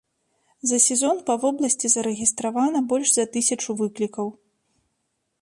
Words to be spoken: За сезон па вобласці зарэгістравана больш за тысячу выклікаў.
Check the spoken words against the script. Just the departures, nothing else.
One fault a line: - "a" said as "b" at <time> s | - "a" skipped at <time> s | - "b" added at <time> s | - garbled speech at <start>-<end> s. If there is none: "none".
none